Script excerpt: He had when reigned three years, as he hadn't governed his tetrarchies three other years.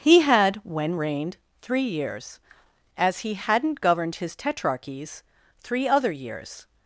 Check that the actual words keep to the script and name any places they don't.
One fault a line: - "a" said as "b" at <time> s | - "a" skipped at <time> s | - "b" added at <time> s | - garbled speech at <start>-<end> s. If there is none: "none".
none